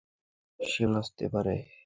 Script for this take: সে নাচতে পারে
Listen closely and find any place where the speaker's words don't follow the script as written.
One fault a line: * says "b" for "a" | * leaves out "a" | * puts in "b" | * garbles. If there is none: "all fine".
all fine